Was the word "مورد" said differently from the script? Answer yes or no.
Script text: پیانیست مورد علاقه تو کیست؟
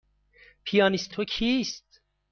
yes